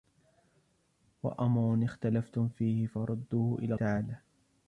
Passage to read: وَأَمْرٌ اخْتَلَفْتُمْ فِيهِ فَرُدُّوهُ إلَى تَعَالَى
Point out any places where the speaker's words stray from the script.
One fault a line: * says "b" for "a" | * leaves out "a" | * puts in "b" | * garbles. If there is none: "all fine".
all fine